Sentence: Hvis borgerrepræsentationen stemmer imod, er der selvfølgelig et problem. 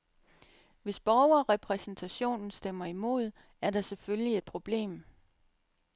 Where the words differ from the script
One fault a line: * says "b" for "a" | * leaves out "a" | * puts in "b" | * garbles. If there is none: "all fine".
all fine